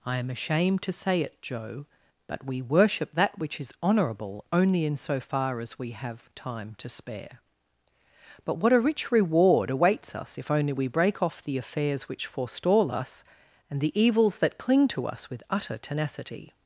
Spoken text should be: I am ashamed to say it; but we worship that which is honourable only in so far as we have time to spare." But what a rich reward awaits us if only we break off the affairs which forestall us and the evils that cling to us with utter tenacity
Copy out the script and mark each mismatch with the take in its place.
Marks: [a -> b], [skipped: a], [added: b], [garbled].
I am ashamed to say it; [added: joe] but we worship that which is honourable only in so far as we have time to spare." But what a rich reward awaits us if only we break off the affairs which forestall us and the evils that cling to us with utter tenacity